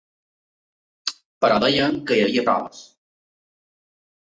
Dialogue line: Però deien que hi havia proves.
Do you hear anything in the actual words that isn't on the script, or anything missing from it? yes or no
no